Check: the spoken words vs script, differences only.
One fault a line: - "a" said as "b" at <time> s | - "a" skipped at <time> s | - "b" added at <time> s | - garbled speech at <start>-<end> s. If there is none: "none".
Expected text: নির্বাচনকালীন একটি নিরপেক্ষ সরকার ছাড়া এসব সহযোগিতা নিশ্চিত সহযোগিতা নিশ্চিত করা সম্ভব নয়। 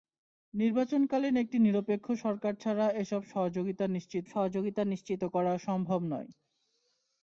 none